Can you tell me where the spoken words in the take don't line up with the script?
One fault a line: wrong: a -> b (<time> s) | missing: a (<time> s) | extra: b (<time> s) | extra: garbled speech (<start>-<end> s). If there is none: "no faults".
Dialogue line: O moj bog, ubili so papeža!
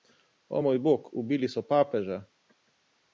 no faults